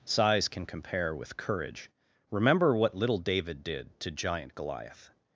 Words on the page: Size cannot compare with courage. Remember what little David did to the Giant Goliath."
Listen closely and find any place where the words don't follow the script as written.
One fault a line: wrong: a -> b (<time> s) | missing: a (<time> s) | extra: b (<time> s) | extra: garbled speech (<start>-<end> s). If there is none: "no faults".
wrong: cannot -> can (0.5 s)
missing: the (4.1 s)